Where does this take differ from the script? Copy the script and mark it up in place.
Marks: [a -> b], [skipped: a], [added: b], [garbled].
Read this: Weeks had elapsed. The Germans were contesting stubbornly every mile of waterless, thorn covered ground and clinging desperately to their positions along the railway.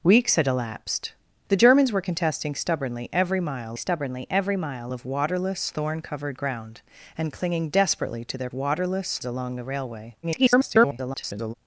Weeks had elapsed. The Germans were contesting stubbornly every mile [added: stubbornly every mile] of waterless, thorn covered ground and clinging desperately to their [positions -> waterless] along the railway. [garbled]